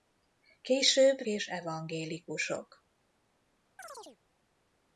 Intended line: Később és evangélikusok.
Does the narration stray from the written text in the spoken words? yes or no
no